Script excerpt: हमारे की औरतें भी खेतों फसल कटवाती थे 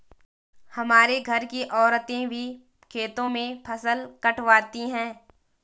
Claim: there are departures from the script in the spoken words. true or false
true